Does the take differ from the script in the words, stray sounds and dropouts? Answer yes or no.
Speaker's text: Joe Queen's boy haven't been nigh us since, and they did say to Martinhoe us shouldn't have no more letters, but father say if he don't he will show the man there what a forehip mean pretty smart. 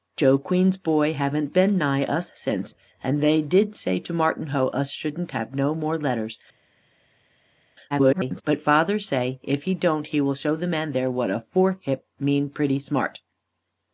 yes